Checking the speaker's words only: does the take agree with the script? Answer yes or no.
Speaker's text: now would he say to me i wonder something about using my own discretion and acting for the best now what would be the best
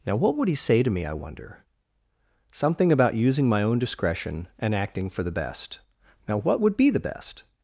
no